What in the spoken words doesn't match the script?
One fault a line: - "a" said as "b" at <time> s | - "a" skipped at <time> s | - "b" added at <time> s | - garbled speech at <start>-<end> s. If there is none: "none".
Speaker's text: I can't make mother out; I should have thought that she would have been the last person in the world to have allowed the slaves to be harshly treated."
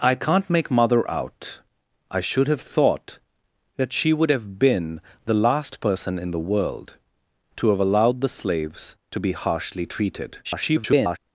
- garbled speech at 10.4-11.2 s